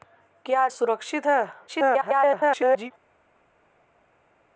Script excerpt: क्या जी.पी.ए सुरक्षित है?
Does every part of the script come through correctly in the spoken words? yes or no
no